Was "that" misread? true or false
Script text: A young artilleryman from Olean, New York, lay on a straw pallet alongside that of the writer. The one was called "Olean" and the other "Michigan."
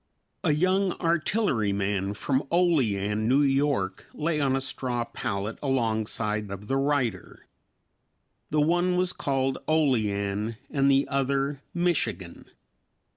true